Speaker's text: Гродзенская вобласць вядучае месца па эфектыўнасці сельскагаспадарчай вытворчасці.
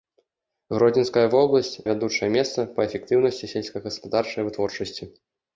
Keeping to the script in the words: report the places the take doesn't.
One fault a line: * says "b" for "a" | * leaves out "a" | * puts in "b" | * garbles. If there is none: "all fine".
all fine